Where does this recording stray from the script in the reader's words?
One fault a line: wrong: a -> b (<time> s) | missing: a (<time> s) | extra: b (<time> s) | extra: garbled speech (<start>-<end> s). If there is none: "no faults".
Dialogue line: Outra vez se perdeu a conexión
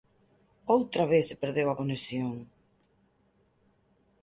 no faults